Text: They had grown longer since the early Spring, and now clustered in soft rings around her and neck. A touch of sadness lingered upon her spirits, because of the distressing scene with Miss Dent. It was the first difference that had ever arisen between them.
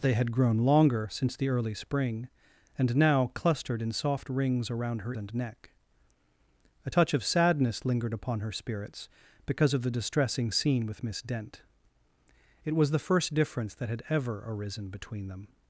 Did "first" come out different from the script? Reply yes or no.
no